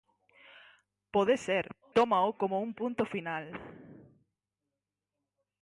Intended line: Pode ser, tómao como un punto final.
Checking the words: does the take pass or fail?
pass